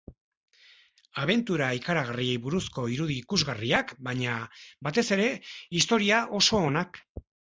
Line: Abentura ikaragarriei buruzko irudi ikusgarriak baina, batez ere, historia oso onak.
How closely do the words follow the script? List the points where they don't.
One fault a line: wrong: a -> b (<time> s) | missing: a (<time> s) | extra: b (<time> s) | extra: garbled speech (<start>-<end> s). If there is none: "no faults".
no faults